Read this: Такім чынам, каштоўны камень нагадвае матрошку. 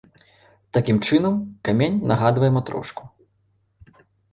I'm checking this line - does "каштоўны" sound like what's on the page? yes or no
no